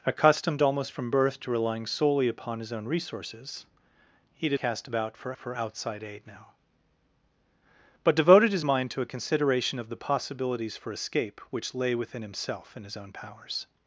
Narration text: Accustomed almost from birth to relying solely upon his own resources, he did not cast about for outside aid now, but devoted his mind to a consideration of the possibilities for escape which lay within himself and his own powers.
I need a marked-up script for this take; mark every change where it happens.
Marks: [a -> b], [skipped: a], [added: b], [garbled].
Accustomed almost from birth to relying solely upon his own resources, he did [skipped: not] cast about for [added: for] outside aid now, but devoted his mind to a consideration of the possibilities for escape which lay within himself and his own powers.